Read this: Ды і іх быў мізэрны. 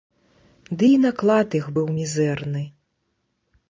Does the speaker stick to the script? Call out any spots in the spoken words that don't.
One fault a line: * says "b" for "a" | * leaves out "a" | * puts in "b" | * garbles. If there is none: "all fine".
* puts in "наклад"